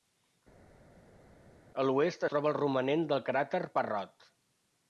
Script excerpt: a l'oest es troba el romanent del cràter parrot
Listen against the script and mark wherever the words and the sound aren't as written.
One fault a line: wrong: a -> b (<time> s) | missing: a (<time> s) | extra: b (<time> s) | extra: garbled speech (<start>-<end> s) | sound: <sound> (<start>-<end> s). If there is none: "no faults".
missing: es (2.2 s)